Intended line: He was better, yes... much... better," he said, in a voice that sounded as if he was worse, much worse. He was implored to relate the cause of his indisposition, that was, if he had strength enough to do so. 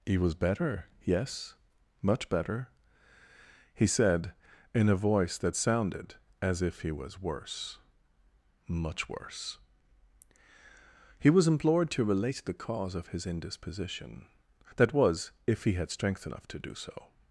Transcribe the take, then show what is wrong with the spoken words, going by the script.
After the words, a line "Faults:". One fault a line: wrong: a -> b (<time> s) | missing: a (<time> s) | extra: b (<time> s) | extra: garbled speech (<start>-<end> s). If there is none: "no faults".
He was better, yes... much... better," he said, in a voice that sounded as if he was worse, much worse. He was implored to relate the cause of his indisposition, that was, if he had strength enough to do so.
Faults:
no faults